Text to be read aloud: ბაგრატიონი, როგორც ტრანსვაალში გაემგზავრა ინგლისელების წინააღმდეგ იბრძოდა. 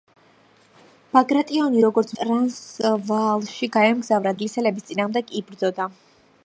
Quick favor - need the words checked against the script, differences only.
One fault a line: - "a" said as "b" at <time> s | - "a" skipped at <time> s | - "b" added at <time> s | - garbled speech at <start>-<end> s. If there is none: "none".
none